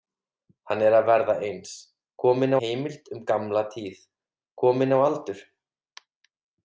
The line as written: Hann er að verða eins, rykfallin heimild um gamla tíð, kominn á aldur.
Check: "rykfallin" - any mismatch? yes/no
yes